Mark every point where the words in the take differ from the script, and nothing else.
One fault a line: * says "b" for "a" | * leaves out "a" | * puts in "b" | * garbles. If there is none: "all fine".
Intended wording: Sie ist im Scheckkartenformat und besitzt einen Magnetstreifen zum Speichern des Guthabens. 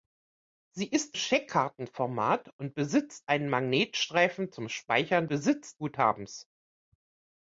* leaves out "im"
* says "besitzt" for "des"